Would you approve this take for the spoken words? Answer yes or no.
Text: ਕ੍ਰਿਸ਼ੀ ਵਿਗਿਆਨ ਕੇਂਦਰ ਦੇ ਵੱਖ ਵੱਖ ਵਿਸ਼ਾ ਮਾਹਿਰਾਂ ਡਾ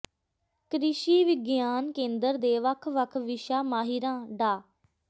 yes